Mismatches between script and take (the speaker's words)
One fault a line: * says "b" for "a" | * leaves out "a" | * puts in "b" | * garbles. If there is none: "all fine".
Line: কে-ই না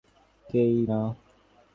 all fine